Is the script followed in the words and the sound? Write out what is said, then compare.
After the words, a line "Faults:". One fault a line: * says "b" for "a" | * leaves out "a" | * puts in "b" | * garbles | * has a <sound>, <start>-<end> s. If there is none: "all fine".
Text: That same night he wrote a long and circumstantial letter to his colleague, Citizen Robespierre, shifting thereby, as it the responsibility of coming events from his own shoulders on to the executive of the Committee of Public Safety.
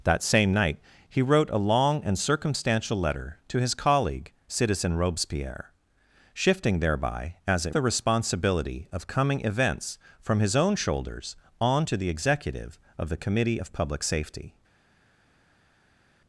That same night he wrote a long and circumstantial letter to his colleague, Citizen Robespierre, shifting thereby, as it the responsibility of coming events from his own shoulders on to the executive of the Committee of Public Safety.
Faults:
all fine